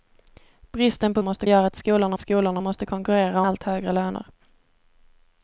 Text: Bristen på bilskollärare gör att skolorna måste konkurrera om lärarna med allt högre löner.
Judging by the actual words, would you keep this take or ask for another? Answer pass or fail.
fail